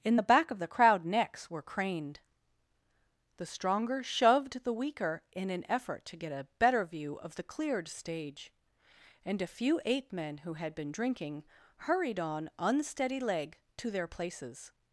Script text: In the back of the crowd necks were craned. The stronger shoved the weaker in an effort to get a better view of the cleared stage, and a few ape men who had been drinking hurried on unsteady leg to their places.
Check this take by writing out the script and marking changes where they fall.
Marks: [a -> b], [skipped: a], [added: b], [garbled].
In the back of the crowd necks were craned. The stronger shoved the weaker in an effort to get a better view of the cleared stage, and a few ape men who had been drinking hurried on unsteady leg to their places.